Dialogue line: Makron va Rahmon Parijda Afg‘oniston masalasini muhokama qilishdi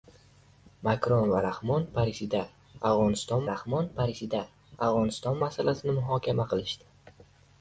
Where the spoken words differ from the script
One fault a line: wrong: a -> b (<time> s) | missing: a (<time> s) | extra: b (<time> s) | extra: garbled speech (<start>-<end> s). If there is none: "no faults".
extra: Rahmon Parijda Afg‘oniston (3.5 s)